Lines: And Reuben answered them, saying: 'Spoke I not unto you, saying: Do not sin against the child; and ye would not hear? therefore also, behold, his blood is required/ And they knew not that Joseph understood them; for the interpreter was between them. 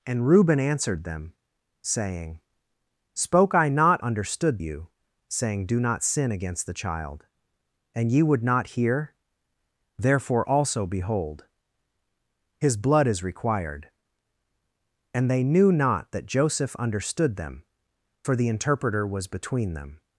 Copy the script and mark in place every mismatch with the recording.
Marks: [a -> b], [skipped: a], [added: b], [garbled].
And Reuben answered them, saying: 'Spoke I not [unto -> understood] you, saying: Do not sin against the child; and ye would not hear? therefore also, behold, his blood is required/ And they knew not that Joseph understood them; for the interpreter was between them.